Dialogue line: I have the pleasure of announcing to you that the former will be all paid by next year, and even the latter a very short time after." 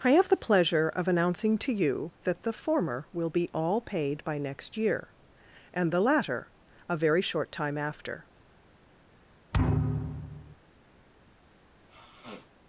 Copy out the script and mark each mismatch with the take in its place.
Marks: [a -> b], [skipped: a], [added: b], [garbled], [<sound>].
I have the pleasure of announcing to you that the former will be all paid by next year, and [skipped: even] the latter a very short time after." [thud] [sniff]